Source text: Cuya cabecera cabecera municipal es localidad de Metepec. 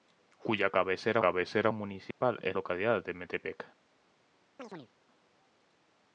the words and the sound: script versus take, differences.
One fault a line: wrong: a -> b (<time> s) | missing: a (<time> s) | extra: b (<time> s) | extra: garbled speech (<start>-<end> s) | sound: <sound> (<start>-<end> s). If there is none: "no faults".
sound: dropout (2.1-2.2 s)
sound: chirp (4.6-4.9 s)